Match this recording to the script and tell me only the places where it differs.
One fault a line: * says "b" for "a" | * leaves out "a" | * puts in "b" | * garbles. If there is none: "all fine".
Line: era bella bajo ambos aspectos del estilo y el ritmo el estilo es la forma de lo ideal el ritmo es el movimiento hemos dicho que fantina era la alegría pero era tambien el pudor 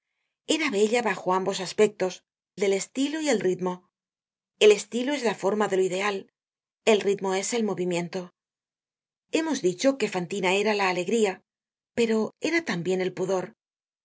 all fine